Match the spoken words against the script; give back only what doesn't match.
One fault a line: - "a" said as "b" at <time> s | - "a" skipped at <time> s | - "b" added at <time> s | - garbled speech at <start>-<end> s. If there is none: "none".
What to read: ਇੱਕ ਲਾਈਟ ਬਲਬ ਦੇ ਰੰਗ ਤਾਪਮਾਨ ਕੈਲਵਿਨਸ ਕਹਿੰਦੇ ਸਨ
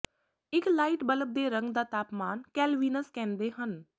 - "ਦਾ" added at 1.7 s
- "ਸਨ" said as "ਹਨ" at 3.5 s